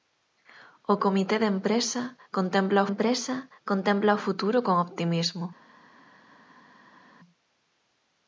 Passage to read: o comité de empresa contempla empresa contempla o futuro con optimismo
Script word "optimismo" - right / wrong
right